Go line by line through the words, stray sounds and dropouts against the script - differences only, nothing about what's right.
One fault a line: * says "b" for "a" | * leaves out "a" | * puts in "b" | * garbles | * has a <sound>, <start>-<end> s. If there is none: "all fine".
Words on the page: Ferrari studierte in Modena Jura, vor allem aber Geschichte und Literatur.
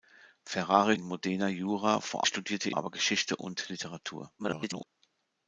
* leaves out "studierte"
* says "studierte" for "allem"
* garbles